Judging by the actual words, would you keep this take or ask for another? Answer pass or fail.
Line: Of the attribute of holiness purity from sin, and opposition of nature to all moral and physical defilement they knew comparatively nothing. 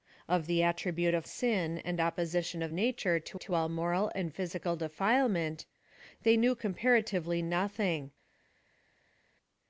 fail